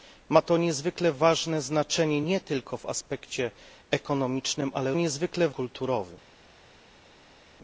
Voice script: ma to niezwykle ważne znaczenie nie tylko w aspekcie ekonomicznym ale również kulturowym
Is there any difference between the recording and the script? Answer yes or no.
yes